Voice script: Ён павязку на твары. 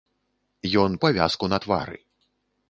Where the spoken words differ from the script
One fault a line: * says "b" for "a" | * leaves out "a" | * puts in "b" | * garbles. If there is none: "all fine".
all fine